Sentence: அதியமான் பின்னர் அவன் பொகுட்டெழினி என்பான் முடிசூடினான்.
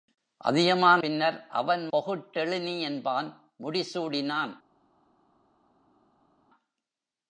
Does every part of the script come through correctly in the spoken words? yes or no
yes